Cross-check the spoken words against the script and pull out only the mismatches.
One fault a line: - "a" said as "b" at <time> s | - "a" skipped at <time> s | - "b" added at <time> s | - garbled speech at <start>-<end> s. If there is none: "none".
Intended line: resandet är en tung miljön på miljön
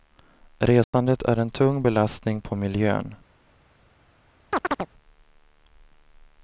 - "miljön" said as "belastning" at 1.8 s